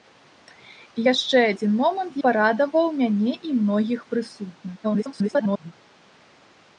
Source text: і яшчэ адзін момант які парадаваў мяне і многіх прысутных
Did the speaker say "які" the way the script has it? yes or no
no